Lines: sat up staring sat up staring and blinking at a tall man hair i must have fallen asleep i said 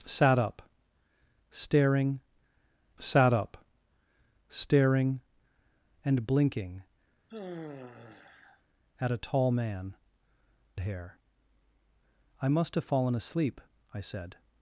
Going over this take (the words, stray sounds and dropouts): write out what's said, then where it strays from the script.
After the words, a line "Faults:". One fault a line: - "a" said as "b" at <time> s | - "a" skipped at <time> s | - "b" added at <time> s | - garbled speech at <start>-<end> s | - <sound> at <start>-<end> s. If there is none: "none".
sat up staring sat up staring and blinking at a tall man hair i must have fallen asleep i said
Faults:
- sigh at 7.3-8.6 s